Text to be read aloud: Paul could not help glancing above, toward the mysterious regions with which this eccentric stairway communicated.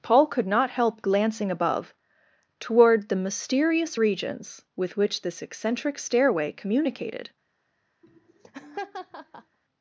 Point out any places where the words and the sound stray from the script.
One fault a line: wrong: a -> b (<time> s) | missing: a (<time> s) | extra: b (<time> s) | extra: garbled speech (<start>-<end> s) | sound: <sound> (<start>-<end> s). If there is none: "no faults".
sound: laugh (8.0-9.6 s)